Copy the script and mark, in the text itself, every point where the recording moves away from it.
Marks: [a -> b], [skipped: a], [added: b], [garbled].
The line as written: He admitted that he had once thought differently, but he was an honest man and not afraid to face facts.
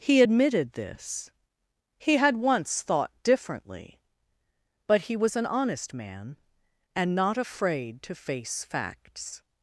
He admitted [that -> this] he had once thought differently, but he was an honest man and not afraid to face facts.